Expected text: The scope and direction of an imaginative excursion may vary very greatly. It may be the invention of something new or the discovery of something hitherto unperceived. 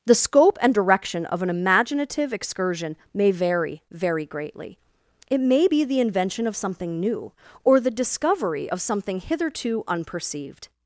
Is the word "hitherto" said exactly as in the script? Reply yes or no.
yes